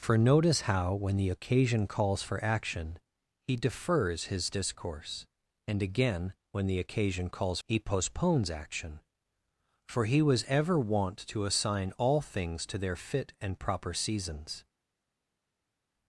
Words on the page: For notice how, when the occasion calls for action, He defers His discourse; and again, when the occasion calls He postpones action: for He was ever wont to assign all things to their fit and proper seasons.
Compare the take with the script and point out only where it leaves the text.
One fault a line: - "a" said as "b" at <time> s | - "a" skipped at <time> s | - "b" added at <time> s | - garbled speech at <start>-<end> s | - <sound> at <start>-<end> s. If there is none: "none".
none